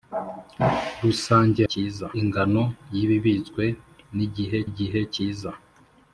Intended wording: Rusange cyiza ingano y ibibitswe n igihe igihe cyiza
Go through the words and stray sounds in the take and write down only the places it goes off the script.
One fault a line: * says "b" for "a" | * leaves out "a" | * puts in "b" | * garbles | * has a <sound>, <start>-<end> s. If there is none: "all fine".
all fine